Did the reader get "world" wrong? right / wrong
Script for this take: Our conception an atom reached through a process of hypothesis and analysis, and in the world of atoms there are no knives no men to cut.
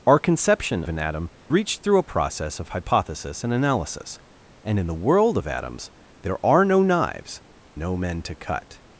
right